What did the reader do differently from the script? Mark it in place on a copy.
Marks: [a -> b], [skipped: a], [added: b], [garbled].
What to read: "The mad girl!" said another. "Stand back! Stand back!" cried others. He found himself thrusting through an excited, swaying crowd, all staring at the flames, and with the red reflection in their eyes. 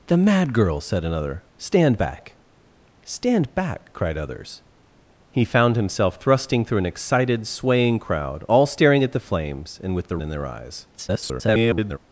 "The mad girl!" said another. "Stand back! Stand back!" cried others. He found himself thrusting through an excited, swaying crowd, all staring at the flames, and with the [skipped: red reflection] in their eyes. [garbled]